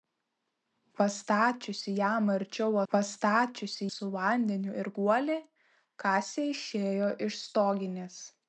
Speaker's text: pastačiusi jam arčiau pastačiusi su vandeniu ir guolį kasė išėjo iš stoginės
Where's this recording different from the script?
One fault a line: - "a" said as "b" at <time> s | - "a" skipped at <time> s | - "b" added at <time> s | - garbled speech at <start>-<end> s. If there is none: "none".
none